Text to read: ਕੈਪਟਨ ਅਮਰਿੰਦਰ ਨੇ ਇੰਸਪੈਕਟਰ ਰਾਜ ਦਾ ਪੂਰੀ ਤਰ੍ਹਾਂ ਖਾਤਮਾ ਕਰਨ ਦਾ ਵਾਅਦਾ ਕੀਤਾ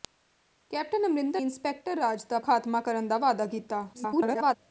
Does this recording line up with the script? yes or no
no